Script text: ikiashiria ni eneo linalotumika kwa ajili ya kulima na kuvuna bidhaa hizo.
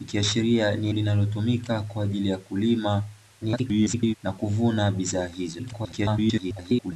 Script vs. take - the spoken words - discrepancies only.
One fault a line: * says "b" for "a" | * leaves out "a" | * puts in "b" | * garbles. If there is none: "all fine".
* leaves out "eneo"
* garbles
* garbles